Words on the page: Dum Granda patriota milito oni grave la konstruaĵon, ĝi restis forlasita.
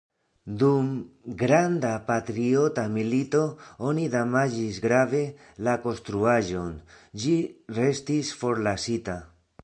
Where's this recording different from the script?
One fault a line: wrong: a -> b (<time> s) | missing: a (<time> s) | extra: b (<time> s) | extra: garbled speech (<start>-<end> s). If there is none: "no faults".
extra: damaĝis (4.2 s)